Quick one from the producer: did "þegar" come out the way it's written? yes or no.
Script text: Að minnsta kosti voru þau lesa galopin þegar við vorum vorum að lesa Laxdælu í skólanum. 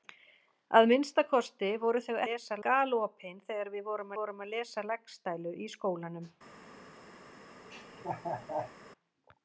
yes